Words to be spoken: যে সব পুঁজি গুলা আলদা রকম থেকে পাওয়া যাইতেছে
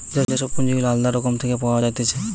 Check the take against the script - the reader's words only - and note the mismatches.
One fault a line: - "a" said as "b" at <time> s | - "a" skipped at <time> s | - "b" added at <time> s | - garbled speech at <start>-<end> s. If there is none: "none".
none